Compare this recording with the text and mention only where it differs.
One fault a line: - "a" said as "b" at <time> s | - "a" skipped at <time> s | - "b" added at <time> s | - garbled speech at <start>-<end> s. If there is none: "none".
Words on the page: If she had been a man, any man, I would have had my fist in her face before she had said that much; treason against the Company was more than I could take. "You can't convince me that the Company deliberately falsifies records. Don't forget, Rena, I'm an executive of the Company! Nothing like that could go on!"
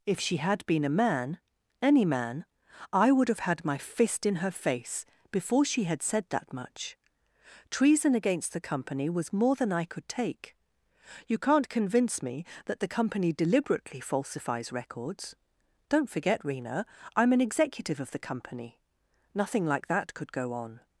none